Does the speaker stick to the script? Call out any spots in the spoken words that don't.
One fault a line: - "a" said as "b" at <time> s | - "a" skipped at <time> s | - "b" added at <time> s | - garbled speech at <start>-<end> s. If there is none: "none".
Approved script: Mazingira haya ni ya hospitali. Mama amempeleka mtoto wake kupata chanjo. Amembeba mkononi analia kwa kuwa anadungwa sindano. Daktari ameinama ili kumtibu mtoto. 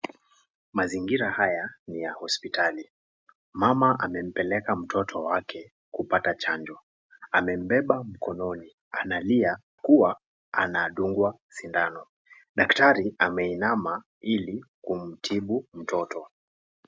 - "kwa" skipped at 9.6 s